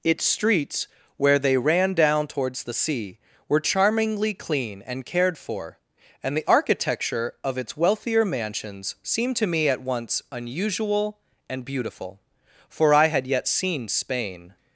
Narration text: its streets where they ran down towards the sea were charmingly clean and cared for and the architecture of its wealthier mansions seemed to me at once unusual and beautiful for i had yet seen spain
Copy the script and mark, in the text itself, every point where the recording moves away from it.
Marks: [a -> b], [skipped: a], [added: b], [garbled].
its streets where they ran down towards the sea were charmingly clean and cared for and the architecture of its wealthier mansions seemed to me at once unusual and beautiful for i had yet seen spain